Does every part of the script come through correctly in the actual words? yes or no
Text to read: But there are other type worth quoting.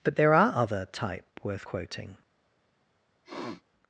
yes